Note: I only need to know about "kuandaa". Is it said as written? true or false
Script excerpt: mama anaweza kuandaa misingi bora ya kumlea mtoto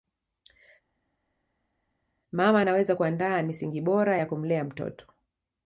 true